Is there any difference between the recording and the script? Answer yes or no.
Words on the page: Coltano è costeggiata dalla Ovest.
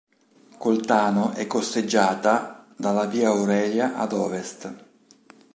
yes